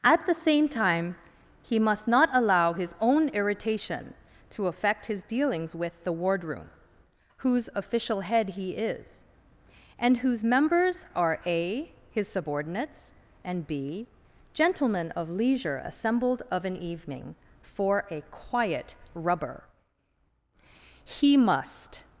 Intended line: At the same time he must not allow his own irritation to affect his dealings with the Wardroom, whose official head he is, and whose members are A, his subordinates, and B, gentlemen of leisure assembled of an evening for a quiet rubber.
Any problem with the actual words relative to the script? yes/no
yes